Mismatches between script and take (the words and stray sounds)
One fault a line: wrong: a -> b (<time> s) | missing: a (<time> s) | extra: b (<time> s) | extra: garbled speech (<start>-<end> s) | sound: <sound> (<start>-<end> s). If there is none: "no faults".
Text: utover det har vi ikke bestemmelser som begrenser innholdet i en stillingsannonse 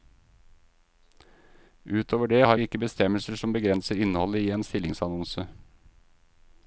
no faults